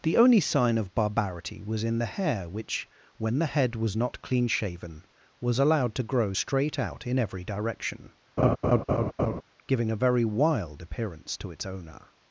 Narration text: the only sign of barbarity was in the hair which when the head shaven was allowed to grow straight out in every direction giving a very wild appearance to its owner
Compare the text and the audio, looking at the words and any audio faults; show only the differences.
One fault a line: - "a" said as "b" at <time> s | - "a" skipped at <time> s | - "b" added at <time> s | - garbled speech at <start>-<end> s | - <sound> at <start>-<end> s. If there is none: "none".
- "was not clean" added at 3.8 s
- laugh at 8.4-9.4 s